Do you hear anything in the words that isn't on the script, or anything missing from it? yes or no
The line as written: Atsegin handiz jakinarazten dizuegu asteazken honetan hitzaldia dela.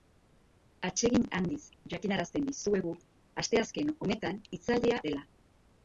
no